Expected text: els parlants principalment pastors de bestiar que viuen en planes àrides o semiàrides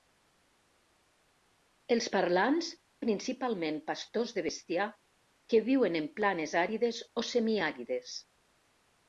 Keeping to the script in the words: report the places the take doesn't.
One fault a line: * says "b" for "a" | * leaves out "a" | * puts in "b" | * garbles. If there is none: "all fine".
all fine